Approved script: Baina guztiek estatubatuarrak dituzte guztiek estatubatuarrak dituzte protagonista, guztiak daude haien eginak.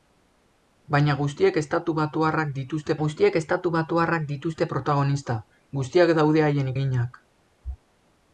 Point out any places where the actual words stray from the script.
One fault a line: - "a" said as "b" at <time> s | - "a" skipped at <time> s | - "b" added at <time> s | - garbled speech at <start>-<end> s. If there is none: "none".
none